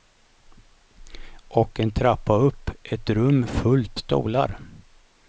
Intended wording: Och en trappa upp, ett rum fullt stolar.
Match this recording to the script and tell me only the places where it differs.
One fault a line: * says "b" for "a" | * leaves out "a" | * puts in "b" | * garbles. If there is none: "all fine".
all fine